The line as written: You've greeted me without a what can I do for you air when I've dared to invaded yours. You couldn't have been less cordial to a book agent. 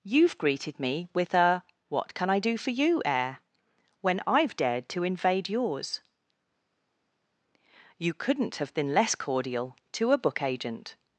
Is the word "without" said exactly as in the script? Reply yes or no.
no